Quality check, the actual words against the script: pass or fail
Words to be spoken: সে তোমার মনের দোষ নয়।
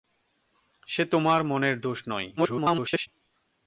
fail